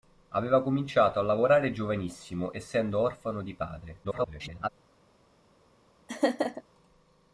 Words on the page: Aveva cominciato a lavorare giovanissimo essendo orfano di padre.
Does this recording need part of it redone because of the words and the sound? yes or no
yes